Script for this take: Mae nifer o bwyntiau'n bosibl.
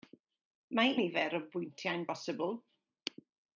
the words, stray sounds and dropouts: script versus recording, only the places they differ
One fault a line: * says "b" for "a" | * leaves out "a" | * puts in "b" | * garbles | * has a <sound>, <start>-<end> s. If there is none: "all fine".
all fine